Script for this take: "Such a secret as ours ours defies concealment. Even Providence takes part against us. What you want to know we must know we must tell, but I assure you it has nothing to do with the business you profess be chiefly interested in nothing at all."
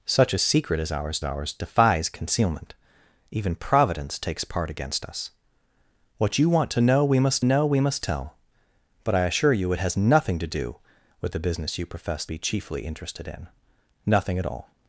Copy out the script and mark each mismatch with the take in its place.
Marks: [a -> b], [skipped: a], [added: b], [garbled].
"Such a secret as ours ours defies concealment. Even Providence takes part against us. What you want to know we must know we must tell, but I assure you it has nothing to do with the business you profess be chiefly interested in nothing at all."